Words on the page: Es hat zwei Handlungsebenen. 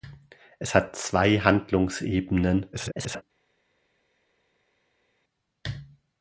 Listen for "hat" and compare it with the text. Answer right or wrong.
right